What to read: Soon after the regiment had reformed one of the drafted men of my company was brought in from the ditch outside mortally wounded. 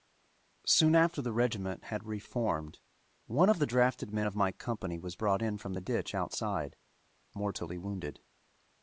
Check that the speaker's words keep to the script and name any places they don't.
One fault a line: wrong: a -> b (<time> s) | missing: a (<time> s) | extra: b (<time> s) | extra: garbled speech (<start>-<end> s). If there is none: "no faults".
no faults